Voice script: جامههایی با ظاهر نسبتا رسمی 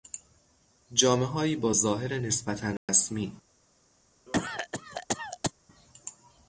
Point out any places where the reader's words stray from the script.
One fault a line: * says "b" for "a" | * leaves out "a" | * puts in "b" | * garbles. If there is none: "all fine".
all fine